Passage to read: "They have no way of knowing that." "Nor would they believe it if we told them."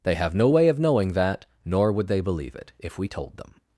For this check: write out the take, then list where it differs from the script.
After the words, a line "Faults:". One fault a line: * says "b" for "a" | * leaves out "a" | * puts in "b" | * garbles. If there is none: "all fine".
"They have no way of knowing that." "Nor would they believe it if we told them."
Faults:
all fine